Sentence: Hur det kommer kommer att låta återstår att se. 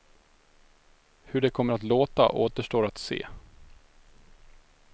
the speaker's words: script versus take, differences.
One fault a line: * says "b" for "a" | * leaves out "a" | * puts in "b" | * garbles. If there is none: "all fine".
* leaves out "kommer"